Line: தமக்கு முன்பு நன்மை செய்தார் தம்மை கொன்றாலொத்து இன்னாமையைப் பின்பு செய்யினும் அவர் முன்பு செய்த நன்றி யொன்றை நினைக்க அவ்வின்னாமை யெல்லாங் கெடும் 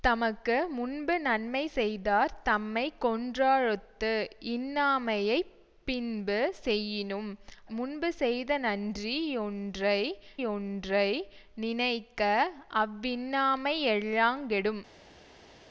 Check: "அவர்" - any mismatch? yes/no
yes